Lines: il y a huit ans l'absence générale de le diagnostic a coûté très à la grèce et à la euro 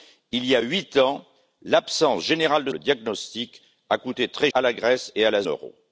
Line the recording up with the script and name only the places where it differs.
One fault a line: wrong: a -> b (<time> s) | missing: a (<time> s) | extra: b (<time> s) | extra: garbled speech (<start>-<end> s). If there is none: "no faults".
no faults